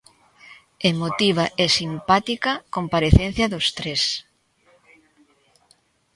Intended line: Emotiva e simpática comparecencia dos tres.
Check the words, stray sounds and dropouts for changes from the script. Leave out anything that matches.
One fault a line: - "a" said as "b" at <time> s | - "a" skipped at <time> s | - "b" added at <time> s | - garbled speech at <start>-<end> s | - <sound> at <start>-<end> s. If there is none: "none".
none